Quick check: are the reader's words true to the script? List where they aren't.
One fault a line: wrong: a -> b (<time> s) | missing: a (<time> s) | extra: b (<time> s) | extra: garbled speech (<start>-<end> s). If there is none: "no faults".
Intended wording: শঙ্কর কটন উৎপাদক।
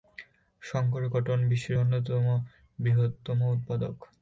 extra: বিশ্বের অন্যতম বৃহত্তম (1.5 s)